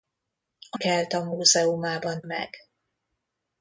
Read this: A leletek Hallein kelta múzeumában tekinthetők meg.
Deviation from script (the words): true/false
true